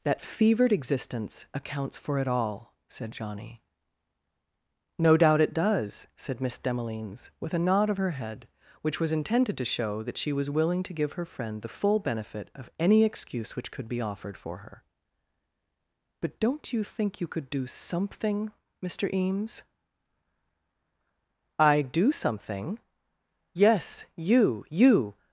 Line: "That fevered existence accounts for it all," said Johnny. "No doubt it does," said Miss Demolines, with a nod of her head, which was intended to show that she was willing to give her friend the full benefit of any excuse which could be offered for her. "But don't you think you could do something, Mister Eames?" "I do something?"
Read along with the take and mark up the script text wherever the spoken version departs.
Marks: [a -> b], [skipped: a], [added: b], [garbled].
"That fevered existence accounts for it all," said Johnny. "No doubt it does," said Miss Demolines, with a nod of her head, which was intended to show that she was willing to give her friend the full benefit of any excuse which could be offered for her. "But don't you think you could do something, Mister Eames?" "I do something?" [added: Yes you You]